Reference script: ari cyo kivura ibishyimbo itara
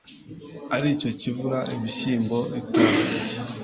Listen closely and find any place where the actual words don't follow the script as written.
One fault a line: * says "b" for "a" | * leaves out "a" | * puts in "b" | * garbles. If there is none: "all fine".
all fine